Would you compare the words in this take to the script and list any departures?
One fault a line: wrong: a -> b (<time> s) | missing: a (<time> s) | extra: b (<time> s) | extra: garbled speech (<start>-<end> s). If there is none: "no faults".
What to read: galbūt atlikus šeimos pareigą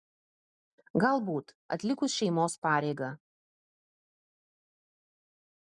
no faults